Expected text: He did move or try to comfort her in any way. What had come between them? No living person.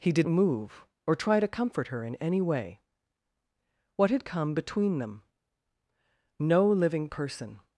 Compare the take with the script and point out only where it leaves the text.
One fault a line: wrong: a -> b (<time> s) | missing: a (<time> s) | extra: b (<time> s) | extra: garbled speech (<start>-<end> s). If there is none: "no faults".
no faults